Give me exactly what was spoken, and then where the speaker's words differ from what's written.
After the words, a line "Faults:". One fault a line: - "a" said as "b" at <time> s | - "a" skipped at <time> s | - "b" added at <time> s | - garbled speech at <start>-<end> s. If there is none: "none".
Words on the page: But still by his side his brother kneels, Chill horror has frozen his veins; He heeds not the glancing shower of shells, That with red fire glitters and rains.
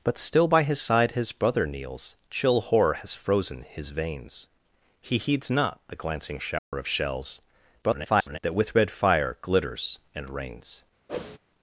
But still by his side his brother kneels, Chill horror has frozen his veins; He heeds not the glancing shower of shells, [garbled] That with red fire glitters and rains.
Faults:
- garbled speech at 7.8-8.4 s